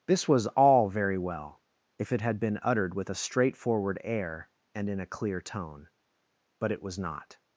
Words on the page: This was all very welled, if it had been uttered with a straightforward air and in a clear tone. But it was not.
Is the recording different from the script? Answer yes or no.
yes